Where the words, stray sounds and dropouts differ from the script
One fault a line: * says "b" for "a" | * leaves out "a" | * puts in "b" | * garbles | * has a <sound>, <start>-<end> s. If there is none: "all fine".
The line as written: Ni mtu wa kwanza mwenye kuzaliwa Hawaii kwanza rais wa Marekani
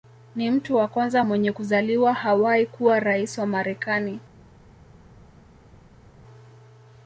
* says "kuwa" for "kwanza"